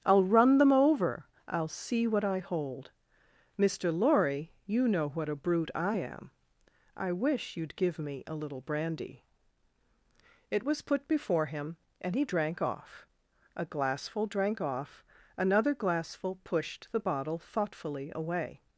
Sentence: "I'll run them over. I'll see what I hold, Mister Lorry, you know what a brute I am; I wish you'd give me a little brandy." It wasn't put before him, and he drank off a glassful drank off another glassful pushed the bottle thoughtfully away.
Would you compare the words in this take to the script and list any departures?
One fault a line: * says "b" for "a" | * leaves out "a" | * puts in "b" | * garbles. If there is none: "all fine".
* says "was" for "wasn't"